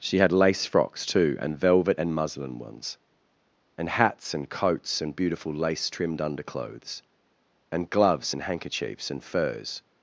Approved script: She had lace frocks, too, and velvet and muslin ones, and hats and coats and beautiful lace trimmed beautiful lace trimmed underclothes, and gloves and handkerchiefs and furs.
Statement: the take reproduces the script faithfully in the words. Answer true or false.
false